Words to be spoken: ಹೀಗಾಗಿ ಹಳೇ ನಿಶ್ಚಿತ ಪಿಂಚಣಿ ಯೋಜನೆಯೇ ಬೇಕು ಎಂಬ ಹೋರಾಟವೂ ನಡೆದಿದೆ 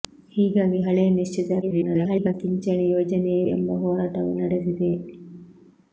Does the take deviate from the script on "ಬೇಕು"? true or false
true